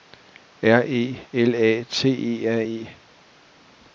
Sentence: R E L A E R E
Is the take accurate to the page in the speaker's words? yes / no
no